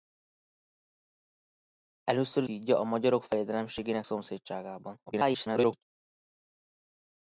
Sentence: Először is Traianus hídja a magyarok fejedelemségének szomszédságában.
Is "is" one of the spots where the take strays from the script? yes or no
yes